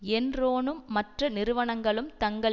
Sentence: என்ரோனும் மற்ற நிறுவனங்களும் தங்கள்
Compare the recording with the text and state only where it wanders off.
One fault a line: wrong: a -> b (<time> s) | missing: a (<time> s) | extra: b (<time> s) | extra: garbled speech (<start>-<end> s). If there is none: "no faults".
no faults